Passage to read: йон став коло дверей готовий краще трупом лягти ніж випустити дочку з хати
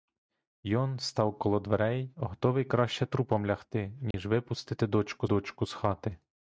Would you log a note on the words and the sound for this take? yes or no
yes